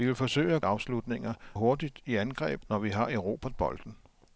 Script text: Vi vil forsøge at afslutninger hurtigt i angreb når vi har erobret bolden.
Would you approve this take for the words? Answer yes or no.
yes